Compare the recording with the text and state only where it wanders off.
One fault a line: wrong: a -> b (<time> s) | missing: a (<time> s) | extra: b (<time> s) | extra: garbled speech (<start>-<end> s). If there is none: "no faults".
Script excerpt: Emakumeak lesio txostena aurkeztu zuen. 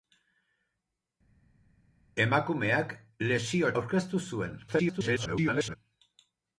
missing: txostena (3.7 s)
extra: garbled speech (4.7-5.8 s)